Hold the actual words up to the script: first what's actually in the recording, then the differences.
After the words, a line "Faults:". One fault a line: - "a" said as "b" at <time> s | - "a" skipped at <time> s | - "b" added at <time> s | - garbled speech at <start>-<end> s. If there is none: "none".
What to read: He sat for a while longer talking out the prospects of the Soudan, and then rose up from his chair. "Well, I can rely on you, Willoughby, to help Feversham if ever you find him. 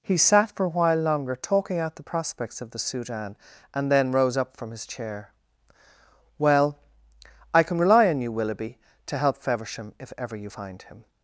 He sat for a while longer talking out the prospects of the Soudan, and then rose up from his chair. "Well, I can rely on you, Willoughby, to help Feversham if ever you find him.
Faults:
none